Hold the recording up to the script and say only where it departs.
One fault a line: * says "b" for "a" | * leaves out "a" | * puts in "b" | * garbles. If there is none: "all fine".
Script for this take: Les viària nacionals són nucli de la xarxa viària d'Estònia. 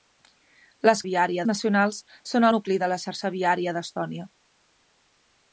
all fine